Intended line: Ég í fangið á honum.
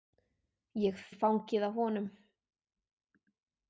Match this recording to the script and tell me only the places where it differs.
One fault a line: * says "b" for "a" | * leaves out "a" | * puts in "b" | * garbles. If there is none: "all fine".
all fine